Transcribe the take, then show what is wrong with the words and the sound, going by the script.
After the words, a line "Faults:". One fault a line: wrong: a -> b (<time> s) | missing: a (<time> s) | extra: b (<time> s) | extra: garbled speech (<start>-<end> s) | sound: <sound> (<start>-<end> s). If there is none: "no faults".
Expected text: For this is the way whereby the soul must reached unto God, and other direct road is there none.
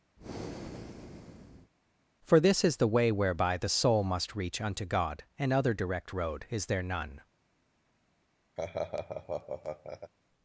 For this is the way whereby the soul must reach unto God, and other direct road is there none.
Faults:
sound: breath (0.2-1.7 s)
wrong: reached -> reach (4.3 s)
sound: laugh (8.6-10.1 s)